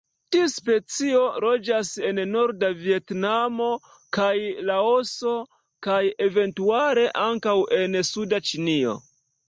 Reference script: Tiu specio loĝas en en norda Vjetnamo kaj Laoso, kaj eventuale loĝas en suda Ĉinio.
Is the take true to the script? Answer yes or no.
no